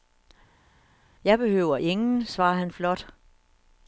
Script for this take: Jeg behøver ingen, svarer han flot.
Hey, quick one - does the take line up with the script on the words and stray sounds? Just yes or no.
yes